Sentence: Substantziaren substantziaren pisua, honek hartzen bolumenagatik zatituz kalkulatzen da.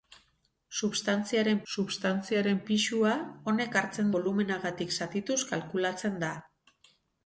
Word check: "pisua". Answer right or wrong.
right